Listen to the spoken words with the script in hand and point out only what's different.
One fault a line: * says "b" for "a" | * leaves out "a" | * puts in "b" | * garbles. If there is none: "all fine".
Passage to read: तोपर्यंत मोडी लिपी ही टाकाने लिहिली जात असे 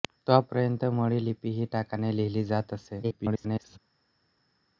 * garbles